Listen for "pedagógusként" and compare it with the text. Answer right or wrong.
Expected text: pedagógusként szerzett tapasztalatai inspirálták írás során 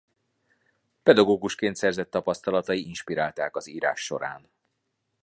right